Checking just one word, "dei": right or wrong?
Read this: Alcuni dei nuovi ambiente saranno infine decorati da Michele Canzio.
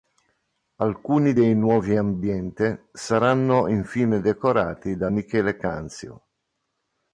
right